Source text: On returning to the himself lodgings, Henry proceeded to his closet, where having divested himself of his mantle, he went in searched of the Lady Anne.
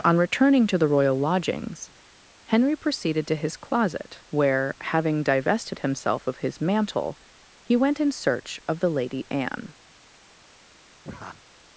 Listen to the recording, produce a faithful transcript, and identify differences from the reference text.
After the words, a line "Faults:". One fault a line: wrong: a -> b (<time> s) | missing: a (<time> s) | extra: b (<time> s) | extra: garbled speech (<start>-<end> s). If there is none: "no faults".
On returning to the royal lodgings, Henry proceeded to his closet, where having divested himself of his mantle, he went in search of the Lady Anne.
Faults:
wrong: himself -> royal (0.8 s)
wrong: searched -> search (8.1 s)